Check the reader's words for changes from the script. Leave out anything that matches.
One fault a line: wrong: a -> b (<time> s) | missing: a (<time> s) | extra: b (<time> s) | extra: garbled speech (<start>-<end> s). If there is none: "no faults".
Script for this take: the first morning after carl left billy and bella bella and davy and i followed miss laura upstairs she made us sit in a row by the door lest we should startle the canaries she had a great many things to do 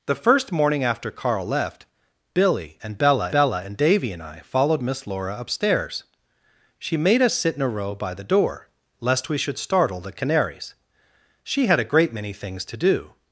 no faults